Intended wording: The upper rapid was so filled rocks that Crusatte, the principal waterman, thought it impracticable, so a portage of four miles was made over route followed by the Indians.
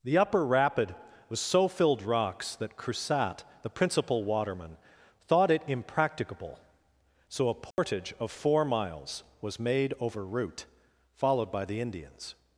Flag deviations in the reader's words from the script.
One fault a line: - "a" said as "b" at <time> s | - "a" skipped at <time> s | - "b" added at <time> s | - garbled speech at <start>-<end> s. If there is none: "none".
none